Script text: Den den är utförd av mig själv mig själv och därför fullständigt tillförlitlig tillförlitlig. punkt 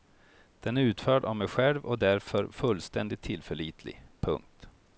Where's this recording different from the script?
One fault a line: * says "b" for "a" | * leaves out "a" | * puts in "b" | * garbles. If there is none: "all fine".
* leaves out "den"
* leaves out "mig själv"
* leaves out "tillförlitlig"